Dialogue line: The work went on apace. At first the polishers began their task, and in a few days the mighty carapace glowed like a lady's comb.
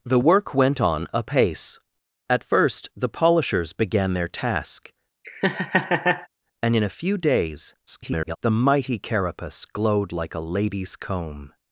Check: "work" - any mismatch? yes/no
no